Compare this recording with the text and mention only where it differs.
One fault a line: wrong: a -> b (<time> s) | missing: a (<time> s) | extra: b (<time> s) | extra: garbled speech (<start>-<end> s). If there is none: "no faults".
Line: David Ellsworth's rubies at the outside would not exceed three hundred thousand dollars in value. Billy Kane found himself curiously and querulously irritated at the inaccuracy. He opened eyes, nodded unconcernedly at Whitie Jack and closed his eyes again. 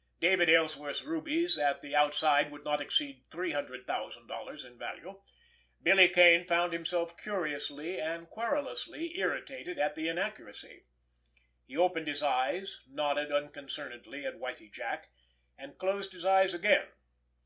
extra: his (12.1 s)